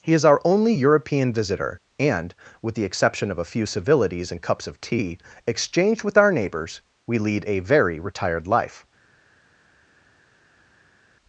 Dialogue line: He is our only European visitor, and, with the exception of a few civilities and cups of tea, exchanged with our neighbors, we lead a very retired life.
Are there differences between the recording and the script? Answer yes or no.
no